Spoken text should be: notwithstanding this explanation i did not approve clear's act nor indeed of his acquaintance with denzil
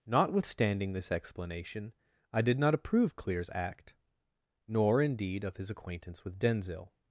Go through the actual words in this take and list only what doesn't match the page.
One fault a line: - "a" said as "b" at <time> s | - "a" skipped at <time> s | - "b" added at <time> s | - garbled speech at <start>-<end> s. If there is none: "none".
none